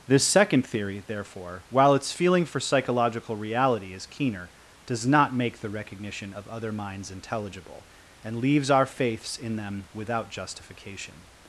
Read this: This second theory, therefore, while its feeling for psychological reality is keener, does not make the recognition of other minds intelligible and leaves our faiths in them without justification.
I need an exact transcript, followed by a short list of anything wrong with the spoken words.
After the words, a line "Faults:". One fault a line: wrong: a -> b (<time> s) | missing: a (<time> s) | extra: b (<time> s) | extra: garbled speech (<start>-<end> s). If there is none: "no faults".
This second theory, therefore, while its feeling for psychological reality is keener, does not make the recognition of other minds intelligible and leaves our faiths in them without justification.
Faults:
no faults